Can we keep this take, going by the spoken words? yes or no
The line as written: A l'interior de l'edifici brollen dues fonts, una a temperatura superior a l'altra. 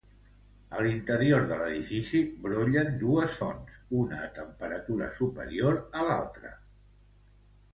yes